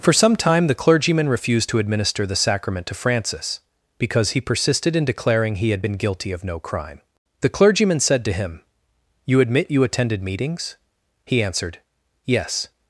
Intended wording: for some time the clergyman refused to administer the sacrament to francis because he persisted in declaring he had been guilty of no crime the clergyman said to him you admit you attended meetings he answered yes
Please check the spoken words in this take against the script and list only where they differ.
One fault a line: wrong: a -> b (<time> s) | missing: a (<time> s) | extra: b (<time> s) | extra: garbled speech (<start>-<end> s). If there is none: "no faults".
no faults